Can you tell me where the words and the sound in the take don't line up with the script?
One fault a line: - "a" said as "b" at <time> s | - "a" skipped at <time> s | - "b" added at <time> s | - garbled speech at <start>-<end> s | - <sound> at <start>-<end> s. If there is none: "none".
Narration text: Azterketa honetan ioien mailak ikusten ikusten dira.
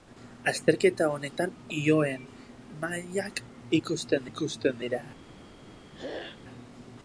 - throat clearing at 5.9-6.4 s